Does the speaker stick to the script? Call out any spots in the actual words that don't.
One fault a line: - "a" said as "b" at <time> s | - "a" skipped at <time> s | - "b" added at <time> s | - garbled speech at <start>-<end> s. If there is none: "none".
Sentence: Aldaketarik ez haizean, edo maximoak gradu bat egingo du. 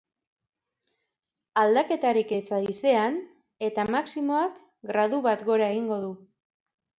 - "edo" said as "eta" at 3.7 s
- "gora" added at 5.5 s